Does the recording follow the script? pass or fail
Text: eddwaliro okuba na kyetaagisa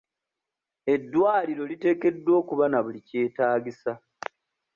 fail